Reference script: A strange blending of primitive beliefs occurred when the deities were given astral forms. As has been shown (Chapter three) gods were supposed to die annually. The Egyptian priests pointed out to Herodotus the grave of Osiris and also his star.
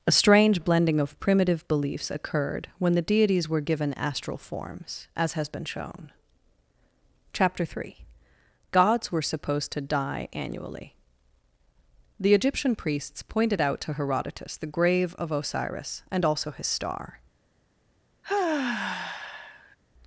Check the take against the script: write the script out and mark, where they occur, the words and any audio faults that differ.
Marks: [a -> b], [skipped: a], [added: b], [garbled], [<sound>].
A strange blending of primitive beliefs occurred when the deities were given astral forms. As has been shown (Chapter three) gods were supposed to die annually. The Egyptian priests pointed out to Herodotus the grave of Osiris and also his star. [sigh]